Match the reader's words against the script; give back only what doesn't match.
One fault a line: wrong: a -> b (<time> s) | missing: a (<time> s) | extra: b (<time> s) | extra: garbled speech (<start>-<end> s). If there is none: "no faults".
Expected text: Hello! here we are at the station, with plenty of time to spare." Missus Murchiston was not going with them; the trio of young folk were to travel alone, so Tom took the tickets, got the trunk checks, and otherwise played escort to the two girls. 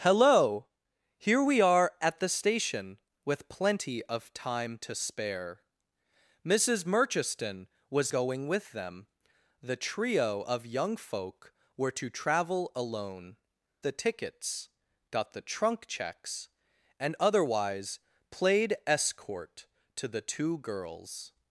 missing: not (8.1 s)
missing: so Tom took (13.4 s)